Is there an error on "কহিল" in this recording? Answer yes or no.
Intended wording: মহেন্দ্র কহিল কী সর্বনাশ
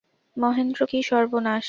yes